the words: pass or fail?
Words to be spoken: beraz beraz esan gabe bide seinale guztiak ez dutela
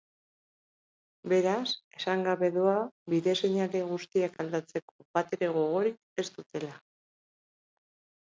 fail